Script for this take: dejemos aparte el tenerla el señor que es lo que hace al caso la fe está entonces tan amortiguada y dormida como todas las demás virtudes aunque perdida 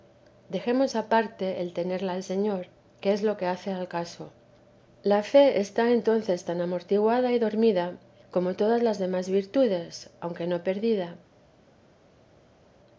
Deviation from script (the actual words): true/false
true